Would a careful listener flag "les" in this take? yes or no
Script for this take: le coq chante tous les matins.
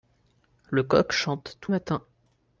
yes